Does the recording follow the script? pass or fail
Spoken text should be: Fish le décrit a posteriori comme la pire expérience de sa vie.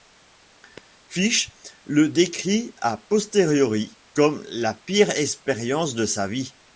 pass